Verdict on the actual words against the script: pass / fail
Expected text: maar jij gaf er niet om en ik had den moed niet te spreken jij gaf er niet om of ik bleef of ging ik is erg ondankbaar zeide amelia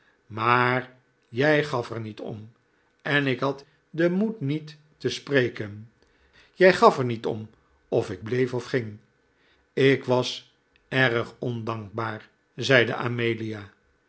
fail